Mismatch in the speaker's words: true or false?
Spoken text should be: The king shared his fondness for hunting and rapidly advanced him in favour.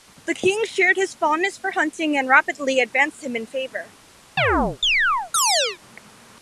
false